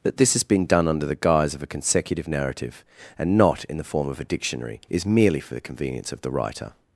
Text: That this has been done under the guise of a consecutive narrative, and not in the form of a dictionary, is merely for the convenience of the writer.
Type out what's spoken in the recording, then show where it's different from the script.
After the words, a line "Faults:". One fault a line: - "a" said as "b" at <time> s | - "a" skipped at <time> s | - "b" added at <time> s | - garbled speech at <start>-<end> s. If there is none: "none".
That this has been done under the guise of a consecutive narrative, and not in the form of a dictionary, is merely for the convenience of the writer.
Faults:
none